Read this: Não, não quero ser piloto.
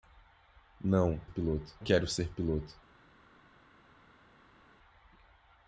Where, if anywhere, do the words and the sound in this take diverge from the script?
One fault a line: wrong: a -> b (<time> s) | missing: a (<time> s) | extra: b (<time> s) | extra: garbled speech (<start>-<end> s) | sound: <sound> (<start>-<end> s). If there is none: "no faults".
wrong: não -> piloto (1.3 s)